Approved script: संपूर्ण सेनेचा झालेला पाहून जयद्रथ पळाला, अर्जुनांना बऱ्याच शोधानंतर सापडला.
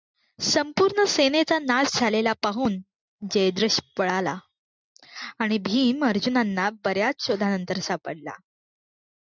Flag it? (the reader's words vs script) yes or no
yes